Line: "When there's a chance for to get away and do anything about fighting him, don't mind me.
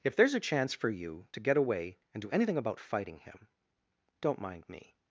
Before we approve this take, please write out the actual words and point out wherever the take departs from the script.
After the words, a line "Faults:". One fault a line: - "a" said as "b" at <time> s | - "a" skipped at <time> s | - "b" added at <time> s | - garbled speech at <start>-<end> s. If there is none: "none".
"If there's a chance for you to get away and do anything about fighting him, don't mind me.
Faults:
- "When" said as "If" at 0.0 s
- "you" added at 0.9 s